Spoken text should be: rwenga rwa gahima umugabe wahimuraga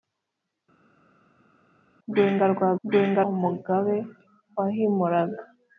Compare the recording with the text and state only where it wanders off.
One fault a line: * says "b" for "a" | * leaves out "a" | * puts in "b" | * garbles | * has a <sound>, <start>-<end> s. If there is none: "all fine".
* says "rwenga" for "gahima"